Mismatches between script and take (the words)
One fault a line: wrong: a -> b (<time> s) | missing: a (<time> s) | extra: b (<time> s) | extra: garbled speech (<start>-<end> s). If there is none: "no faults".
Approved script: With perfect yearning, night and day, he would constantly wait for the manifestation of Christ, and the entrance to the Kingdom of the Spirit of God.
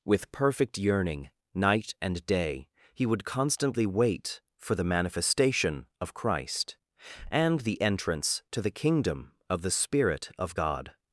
no faults